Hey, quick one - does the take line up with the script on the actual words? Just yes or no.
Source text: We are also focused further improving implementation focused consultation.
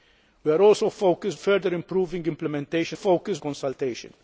yes